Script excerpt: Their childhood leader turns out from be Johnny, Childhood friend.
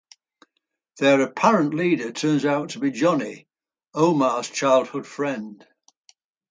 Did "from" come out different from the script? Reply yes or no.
yes